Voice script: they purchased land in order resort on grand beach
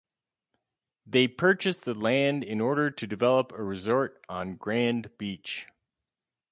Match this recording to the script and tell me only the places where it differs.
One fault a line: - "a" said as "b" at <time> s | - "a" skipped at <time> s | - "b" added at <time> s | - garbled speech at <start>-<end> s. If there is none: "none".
- "the" added at 1.8 s
- "to develop a" added at 2.9 s